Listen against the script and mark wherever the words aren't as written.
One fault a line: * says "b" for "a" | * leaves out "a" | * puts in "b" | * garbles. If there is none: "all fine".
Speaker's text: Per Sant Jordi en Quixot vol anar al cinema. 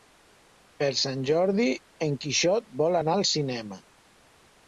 all fine